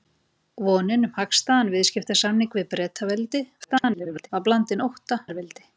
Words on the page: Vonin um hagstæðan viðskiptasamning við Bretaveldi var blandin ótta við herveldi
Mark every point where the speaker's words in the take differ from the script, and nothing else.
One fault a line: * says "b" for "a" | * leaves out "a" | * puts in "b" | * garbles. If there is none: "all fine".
* garbles
* leaves out "við"